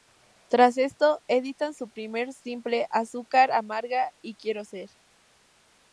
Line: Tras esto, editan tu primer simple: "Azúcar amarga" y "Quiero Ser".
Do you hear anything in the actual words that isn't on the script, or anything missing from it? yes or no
yes